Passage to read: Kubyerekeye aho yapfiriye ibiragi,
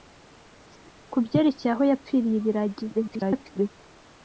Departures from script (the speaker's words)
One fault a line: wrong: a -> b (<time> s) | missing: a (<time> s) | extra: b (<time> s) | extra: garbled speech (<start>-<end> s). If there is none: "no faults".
extra: garbled speech (2.9-3.7 s)